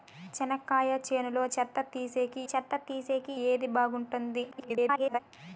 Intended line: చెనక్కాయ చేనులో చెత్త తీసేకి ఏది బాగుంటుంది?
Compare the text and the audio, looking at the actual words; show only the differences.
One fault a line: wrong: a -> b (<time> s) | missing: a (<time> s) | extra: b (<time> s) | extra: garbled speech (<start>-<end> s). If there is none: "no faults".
extra: చెత్త తీసేకి (2.5 s)
extra: garbled speech (4.5-5.2 s)